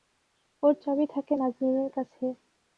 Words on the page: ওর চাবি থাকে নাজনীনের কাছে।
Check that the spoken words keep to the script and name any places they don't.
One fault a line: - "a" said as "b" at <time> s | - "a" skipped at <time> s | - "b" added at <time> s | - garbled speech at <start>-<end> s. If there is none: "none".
none